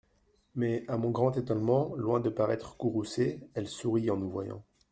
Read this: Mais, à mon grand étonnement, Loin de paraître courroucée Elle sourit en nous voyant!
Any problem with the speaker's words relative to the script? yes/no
no